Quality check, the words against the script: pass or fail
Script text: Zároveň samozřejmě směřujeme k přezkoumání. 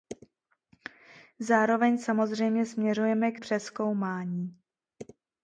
pass